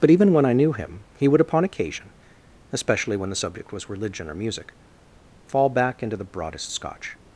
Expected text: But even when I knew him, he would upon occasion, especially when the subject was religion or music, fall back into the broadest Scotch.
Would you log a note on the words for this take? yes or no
no